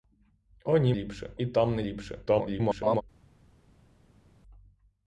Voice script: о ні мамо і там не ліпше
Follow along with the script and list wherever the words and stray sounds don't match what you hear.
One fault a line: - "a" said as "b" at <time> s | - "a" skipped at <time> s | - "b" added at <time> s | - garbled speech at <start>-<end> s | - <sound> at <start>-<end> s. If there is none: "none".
- "мамо" said as "ліпше" at 0.9 s
- garbled speech at 2.3-3.0 s